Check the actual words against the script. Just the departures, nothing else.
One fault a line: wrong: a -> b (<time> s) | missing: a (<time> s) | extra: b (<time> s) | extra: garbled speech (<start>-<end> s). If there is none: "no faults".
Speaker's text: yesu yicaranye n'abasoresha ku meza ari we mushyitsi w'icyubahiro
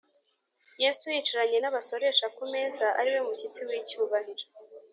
no faults